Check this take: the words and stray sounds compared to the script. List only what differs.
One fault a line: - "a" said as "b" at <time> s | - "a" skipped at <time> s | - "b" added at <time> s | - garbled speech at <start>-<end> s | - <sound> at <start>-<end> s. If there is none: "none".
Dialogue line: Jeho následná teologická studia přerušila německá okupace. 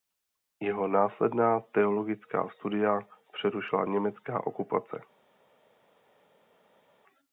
none